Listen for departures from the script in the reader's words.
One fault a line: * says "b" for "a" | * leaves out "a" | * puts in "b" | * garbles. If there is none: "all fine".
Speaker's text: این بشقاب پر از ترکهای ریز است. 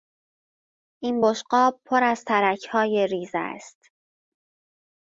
all fine